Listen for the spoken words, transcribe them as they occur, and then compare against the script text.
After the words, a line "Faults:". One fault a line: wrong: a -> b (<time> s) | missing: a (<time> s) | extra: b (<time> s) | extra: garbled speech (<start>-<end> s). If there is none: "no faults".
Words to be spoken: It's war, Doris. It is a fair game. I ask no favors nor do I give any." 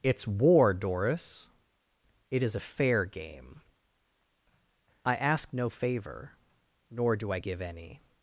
It's war, Doris. It is a fair game. I ask no favor nor do I give any."
Faults:
wrong: favors -> favor (5.7 s)